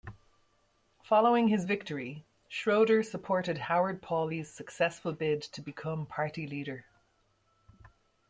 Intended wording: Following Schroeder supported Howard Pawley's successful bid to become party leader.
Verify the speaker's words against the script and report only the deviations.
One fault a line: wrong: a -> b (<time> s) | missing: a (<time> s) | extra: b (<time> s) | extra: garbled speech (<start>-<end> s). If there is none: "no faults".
extra: his victory (1.5 s)